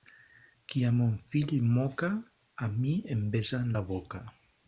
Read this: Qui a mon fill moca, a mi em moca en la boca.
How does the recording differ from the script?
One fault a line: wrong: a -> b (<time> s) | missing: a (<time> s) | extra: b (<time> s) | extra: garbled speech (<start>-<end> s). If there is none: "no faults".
wrong: moca -> besa (3.4 s)